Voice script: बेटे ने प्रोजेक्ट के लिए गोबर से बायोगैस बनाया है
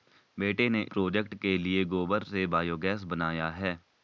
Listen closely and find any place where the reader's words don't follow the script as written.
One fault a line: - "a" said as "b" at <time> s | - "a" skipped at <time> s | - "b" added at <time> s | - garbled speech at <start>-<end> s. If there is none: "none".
none